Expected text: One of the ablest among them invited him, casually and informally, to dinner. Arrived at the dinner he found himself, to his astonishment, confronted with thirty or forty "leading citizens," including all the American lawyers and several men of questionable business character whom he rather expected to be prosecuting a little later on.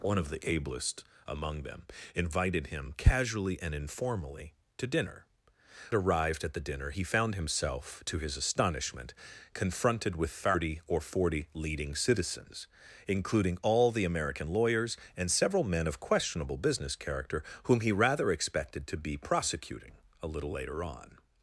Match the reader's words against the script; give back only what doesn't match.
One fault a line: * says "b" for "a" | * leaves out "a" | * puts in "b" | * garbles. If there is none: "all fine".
all fine